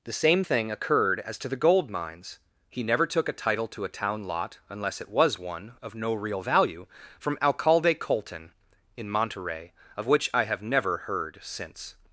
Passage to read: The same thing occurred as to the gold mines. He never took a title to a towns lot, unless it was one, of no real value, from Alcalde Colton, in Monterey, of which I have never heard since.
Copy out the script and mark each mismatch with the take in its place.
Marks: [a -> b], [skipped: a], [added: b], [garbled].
The same thing occurred as to the gold mines. He never took a title to a [towns -> town] lot, unless it was one, of no real value, from Alcalde Colton, in Monterey, of which I have never heard since.